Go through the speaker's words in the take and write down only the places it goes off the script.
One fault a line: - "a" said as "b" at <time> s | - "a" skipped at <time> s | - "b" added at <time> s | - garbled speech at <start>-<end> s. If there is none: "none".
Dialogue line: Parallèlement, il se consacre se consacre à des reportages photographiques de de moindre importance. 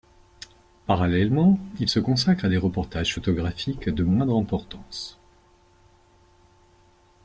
- "se consacre" skipped at 2.4 s
- "de" skipped at 4.0 s